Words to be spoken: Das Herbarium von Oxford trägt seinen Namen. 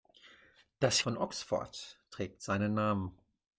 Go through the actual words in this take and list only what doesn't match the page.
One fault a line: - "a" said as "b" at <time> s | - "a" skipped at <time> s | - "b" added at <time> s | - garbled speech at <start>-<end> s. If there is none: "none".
- "Herbarium" skipped at 1.0 s